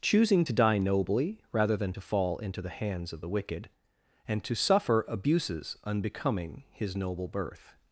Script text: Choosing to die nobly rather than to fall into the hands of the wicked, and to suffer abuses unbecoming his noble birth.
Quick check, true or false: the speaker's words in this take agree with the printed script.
true